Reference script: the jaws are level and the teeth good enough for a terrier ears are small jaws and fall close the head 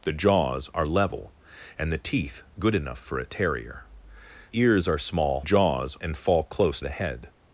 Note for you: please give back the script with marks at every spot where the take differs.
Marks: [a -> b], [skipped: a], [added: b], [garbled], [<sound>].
the jaws are level and the teeth good enough for a terrier ears are small jaws and fall close the head